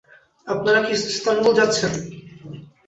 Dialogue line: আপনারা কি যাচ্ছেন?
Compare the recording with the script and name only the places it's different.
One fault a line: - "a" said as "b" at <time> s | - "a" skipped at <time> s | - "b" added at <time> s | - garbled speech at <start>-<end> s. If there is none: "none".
- "ইস্তানবুল" added at 1.1 s